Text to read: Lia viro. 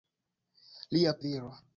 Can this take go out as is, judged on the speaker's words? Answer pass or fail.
pass